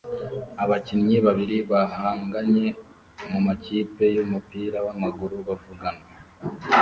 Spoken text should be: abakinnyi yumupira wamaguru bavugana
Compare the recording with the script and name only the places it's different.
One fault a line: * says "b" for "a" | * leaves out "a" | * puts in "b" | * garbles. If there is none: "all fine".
* puts in "babiri bahanganye mumakipe"